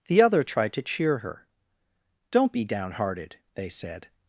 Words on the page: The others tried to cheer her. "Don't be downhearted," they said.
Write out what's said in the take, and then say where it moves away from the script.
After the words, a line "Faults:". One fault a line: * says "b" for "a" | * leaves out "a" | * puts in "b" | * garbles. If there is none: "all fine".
The other tried to cheer her. "Don't be downhearted," they said.
Faults:
* says "other" for "others"